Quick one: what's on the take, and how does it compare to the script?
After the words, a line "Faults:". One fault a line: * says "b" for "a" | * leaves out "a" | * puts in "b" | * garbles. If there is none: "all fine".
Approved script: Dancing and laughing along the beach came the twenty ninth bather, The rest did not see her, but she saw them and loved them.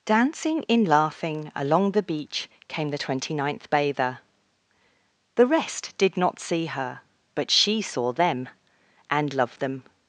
Dancing in laughing along the beach came the twenty ninth bather, The rest did not see her, but she saw them and loved them.
Faults:
* says "in" for "and"